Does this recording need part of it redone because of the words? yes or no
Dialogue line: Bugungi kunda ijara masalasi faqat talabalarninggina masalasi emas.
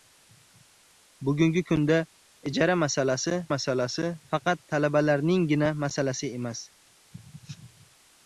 yes